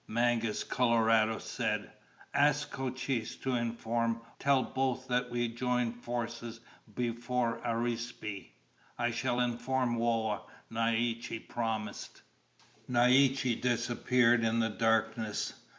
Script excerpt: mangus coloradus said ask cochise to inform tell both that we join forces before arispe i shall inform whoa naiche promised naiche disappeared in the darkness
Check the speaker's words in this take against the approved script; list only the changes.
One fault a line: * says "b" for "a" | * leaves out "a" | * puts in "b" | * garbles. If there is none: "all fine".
all fine